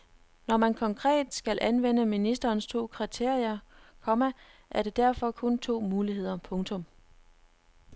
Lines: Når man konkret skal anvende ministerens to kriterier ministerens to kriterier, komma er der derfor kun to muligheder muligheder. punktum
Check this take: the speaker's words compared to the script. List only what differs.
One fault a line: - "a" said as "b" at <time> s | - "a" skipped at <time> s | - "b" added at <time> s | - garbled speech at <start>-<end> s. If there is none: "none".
- "ministerens to kriterier" skipped at 3.6 s
- "muligheder" skipped at 6.4 s